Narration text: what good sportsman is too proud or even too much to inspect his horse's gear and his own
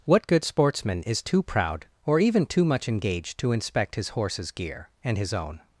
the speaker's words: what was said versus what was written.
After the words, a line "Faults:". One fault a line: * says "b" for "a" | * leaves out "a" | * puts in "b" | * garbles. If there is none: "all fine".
what good sportsman is too proud or even too much engaged to inspect his horse's gear and his own
Faults:
* puts in "engaged"